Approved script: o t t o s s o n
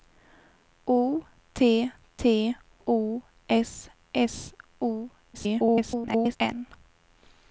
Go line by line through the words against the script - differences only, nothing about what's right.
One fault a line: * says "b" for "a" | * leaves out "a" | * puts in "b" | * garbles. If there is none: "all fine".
* garbles